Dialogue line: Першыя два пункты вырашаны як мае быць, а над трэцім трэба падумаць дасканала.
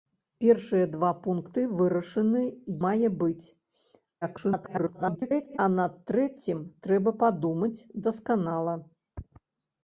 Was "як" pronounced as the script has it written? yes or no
no